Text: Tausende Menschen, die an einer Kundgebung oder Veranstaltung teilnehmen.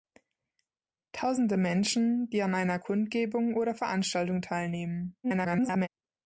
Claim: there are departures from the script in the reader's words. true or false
true